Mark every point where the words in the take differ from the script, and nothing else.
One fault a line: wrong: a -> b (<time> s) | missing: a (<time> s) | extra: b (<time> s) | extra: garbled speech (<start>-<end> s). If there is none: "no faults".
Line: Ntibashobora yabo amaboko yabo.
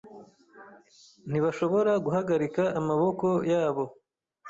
wrong: yabo -> guhagarika (2.0 s)